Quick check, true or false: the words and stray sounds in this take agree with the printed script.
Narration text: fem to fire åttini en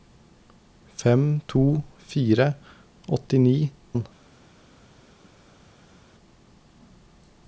true